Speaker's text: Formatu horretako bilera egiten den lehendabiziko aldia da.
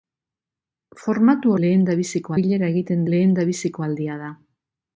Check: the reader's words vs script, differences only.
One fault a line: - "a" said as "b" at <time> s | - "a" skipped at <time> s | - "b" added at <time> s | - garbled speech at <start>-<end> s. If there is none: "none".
- "horretako" said as "lehendabiziko" at 1.7 s
- "den" skipped at 3.1 s